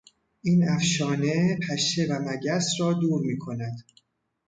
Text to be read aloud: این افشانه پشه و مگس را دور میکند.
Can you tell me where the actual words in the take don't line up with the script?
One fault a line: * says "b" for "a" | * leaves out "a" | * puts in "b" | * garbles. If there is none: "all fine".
all fine